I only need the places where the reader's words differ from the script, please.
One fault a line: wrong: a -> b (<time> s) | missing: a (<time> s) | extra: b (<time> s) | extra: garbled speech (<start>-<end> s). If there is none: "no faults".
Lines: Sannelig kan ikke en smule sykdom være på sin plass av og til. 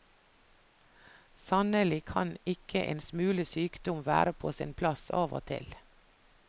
no faults